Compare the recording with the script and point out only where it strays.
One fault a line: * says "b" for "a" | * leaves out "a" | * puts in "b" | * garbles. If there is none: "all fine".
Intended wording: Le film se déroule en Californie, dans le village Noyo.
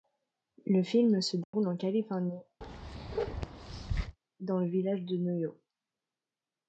* puts in "de"